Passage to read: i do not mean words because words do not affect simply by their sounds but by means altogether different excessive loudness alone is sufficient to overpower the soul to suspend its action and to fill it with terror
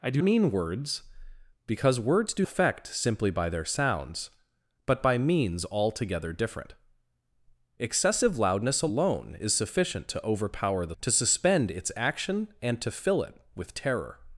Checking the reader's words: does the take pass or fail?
fail